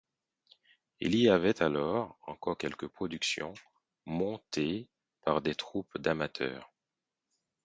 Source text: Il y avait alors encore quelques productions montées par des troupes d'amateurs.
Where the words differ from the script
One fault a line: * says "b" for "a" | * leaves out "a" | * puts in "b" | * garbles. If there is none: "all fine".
all fine